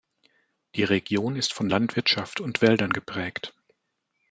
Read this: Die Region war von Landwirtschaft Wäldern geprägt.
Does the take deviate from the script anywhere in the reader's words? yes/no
yes